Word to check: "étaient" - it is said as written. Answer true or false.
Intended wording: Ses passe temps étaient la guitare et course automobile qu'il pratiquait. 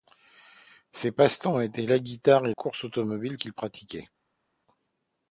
true